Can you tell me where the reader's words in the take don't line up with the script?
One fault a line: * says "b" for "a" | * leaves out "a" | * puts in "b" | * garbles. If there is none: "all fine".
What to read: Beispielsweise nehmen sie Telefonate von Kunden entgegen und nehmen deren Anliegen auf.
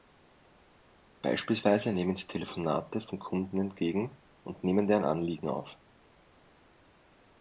all fine